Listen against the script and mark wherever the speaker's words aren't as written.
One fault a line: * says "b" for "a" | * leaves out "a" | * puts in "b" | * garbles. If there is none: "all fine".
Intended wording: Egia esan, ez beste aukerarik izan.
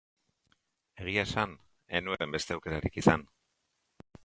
* puts in "nuen"